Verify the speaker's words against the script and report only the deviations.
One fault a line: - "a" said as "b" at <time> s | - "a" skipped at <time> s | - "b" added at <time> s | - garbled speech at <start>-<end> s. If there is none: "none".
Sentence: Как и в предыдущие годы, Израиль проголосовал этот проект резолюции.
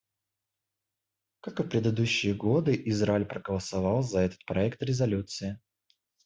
- "за" added at 4.0 s